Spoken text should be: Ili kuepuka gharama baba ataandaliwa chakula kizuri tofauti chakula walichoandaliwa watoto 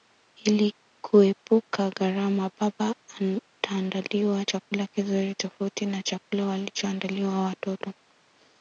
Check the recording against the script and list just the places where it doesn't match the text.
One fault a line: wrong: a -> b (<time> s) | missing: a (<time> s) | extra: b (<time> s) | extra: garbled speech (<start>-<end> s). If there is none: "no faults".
extra: na (5.9 s)